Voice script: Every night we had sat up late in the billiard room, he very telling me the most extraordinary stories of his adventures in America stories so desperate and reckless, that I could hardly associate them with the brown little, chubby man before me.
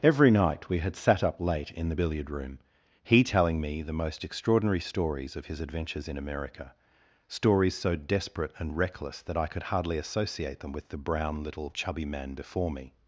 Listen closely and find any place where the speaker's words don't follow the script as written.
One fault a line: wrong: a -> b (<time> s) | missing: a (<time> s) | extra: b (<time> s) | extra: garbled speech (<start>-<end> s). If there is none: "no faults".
missing: very (3.2 s)